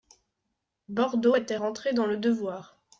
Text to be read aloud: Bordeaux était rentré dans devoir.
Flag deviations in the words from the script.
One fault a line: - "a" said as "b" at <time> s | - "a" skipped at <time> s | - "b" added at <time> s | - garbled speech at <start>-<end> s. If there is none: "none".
- "le" added at 2.0 s